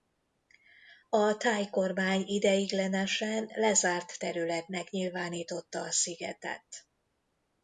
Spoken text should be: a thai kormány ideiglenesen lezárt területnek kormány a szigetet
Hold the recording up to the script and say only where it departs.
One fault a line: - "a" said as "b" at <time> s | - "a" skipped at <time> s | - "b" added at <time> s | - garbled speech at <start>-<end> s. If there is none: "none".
- "kormány" said as "nyilvánította" at 4.9 s